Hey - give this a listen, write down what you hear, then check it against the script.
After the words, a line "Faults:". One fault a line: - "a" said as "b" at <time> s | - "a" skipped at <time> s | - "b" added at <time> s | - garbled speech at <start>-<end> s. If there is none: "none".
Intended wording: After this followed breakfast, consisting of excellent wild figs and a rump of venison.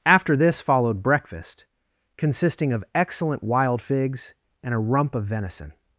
After this followed breakfast, consisting of excellent wild figs and a rump of venison.
Faults:
none